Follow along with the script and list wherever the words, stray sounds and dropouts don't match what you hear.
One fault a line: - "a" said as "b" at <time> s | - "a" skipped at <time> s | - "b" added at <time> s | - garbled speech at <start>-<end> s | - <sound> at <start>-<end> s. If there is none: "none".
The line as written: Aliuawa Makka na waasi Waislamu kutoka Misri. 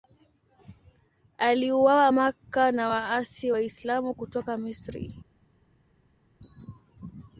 none